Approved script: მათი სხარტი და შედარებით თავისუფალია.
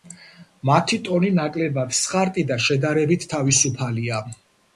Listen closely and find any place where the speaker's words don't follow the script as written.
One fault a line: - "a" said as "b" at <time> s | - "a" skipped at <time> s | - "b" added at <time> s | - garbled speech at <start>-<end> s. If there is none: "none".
- "ტონი ნაკლებად" added at 1.1 s